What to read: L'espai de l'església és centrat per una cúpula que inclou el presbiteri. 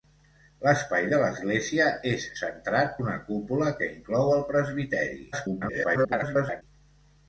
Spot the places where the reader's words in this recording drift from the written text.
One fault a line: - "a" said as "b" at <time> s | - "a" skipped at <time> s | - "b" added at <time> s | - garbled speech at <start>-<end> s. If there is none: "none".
- "per" skipped at 2.9 s
- garbled speech at 5.3-6.6 s